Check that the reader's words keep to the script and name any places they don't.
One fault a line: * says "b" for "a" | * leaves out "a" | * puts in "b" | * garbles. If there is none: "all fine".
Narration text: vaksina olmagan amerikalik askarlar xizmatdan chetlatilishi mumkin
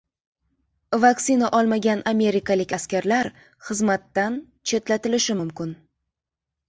all fine